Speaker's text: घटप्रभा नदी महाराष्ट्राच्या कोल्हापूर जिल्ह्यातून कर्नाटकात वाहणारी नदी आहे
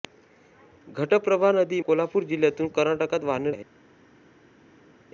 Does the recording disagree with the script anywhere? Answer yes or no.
yes